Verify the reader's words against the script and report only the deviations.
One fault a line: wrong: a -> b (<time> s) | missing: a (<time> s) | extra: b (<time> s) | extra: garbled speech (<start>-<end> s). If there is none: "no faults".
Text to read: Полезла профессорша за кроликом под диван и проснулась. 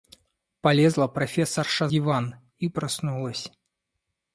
missing: за кроликом под (1.9 s)